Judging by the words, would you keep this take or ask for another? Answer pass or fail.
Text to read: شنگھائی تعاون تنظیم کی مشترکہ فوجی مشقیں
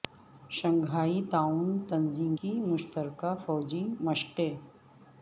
pass